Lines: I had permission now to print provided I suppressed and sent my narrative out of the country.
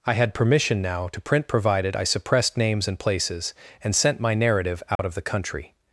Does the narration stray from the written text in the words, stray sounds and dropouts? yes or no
yes